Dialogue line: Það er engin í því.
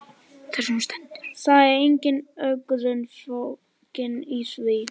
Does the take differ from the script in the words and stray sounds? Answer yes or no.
yes